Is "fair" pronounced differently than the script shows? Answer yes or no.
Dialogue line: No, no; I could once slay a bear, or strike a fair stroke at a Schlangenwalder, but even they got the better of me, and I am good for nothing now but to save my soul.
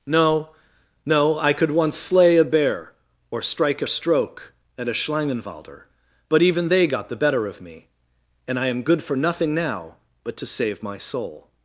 yes